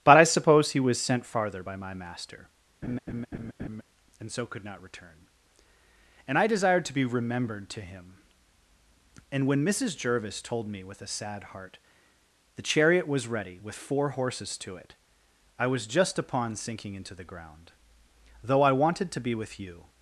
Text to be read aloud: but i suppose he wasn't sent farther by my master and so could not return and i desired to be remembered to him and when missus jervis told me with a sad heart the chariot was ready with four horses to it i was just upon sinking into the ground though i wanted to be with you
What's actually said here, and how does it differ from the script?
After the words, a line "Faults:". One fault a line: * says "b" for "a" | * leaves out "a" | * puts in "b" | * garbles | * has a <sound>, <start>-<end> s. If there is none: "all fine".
but i suppose he was sent farther by my master and so could not return and i desired to be remembered to him and when missus jervis told me with a sad heart the chariot was ready with four horses to it i was just upon sinking into the ground though i wanted to be with you
Faults:
* says "was" for "wasn't"
* has a laugh, 2.8-3.8 s